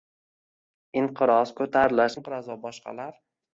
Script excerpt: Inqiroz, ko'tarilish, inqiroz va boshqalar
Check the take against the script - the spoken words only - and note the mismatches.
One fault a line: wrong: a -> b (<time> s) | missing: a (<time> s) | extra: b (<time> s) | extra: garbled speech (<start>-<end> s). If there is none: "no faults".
no faults